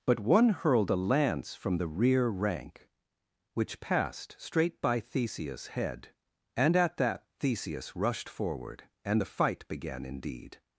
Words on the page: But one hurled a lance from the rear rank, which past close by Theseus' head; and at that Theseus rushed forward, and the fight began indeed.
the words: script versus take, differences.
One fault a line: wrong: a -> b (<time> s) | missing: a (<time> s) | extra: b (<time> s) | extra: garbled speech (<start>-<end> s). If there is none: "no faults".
wrong: past close -> passed straight (3.8 s)